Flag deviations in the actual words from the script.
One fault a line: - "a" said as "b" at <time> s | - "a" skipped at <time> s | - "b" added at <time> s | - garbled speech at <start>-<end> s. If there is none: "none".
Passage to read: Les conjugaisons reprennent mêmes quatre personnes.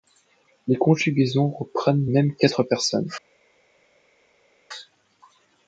none